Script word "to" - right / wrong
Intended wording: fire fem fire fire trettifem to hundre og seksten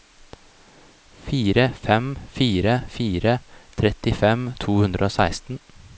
right